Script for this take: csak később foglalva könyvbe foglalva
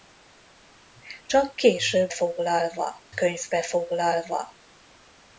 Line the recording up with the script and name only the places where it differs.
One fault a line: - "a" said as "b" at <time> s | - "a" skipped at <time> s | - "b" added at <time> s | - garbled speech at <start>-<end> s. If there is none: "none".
none